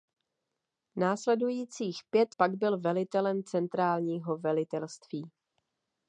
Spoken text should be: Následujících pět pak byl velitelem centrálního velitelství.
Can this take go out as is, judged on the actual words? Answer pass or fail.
pass